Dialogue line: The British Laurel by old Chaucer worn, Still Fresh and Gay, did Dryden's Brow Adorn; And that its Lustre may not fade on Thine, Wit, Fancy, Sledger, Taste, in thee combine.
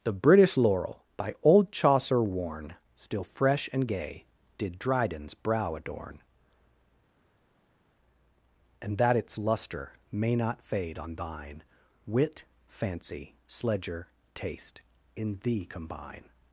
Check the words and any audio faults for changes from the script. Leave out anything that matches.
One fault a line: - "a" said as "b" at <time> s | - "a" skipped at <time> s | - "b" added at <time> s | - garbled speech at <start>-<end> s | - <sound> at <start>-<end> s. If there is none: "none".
none